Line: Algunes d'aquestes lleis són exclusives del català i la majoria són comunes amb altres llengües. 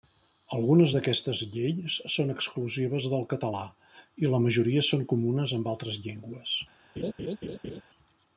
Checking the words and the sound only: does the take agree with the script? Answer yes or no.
no